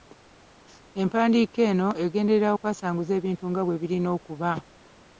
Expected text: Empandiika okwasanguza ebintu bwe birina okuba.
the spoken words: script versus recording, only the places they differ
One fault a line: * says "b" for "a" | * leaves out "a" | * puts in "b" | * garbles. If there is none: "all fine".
* puts in "eno egenderera"
* puts in "nga"